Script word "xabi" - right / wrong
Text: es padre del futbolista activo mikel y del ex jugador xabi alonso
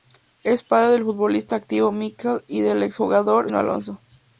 wrong